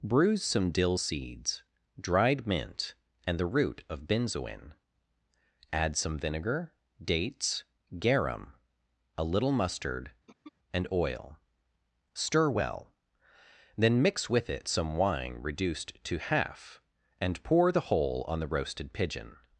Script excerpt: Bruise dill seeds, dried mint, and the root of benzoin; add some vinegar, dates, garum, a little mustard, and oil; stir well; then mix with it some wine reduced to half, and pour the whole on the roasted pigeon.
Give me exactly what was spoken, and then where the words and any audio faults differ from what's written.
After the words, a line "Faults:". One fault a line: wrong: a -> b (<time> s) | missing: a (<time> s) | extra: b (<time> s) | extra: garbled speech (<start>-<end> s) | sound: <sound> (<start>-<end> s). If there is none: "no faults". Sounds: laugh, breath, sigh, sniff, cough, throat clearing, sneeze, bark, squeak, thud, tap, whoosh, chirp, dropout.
Bruise some dill seeds, dried mint, and the root of benzoin; add some vinegar, dates, garum, a little mustard, and oil; stir well; then mix with it some wine reduced to half, and pour the whole on the roasted pigeon.
Faults:
extra: some (0.4 s)
sound: throat clearing (10.3-10.5 s)